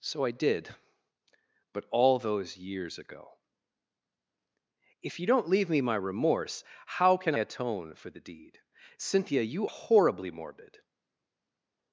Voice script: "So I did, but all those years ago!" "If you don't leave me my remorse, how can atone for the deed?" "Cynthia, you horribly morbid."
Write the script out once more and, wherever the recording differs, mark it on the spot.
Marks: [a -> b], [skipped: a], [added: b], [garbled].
"So I did, but all those years ago!" "If you don't leave me my remorse, how can atone for the deed?" "Cynthia, you horribly morbid."